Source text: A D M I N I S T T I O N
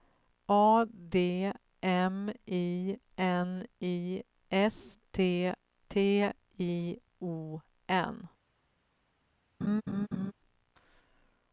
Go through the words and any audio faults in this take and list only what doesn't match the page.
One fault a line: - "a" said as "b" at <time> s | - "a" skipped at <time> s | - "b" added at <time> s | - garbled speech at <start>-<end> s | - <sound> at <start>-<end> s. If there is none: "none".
- laugh at 9.6-10.3 s